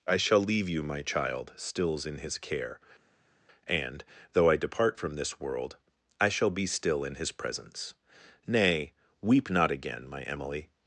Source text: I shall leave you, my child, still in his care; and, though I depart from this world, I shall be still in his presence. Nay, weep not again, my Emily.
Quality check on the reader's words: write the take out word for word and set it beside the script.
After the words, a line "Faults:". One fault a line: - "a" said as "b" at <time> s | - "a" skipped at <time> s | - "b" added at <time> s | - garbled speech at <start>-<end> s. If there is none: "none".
I shall leave you, my child, stills in his care; and, though I depart from this world, I shall be still in his presence. Nay, weep not again, my Emily.
Faults:
- "still" said as "stills" at 1.6 s